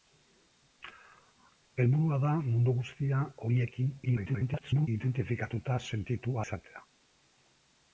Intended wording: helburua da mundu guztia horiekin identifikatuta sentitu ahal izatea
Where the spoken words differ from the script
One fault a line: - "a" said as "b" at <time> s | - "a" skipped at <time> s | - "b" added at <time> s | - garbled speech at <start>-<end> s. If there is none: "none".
- garbled speech at 4.1-4.9 s
- "ahal" skipped at 6.4 s